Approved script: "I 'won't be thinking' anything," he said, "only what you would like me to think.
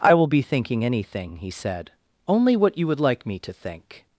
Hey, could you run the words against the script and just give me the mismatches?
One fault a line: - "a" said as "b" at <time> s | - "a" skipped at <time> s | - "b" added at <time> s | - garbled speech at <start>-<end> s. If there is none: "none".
- "won't" said as "will" at 0.1 s